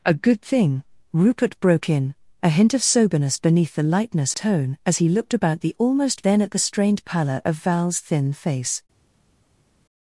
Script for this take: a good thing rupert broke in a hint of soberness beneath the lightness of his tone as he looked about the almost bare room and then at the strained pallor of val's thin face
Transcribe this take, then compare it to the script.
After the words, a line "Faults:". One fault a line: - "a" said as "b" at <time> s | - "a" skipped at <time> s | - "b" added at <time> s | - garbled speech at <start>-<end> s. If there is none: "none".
a good thing rupert broke in a hint of soberness beneath the lightness tone as he looked about the almost then at the strained pallor of val's thin face
Faults:
- "of his" skipped at 4.3 s
- "bare room and" skipped at 6.3 s